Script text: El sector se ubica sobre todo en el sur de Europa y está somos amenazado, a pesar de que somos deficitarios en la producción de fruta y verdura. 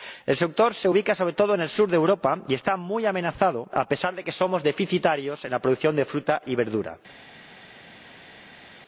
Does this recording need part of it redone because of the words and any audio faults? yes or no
yes